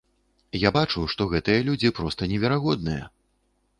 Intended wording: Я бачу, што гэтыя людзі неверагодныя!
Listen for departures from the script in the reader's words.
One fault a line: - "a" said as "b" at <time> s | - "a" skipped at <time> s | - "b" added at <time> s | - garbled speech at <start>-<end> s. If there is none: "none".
- "проста" added at 2.0 s